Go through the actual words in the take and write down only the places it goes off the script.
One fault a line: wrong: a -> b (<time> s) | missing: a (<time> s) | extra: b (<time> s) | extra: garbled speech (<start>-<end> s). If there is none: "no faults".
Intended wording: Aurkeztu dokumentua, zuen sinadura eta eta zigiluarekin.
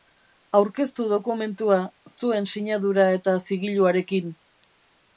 missing: eta (3.4 s)